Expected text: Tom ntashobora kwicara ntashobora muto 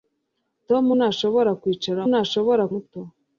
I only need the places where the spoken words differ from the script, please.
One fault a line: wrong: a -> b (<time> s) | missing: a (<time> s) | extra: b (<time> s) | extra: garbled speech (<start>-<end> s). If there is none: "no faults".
no faults